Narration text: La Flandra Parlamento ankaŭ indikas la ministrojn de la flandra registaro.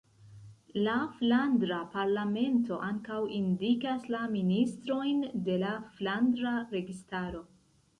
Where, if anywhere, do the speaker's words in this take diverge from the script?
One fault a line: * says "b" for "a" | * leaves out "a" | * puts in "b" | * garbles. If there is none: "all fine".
all fine